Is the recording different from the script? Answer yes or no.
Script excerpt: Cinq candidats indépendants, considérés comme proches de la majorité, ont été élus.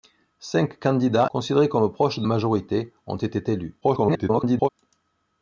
yes